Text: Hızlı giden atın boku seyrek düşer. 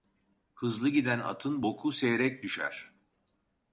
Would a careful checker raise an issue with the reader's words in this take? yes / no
no